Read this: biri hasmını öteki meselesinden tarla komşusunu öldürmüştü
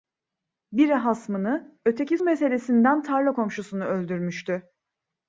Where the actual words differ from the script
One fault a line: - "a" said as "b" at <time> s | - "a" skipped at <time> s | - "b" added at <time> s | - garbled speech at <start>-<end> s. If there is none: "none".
none